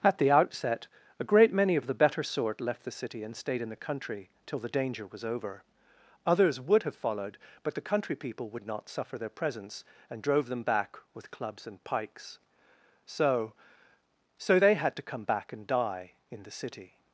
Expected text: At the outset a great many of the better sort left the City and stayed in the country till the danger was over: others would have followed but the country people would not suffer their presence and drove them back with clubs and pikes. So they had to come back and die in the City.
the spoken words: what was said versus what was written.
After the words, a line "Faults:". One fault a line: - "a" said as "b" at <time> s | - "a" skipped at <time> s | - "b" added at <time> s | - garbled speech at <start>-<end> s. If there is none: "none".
At the outset a great many of the better sort left the City and stayed in the country till the danger was over: others would have followed but the country people would not suffer their presence and drove them back with clubs and pikes. So So they had to come back and die in the City.
Faults:
- "So" added at 14.4 s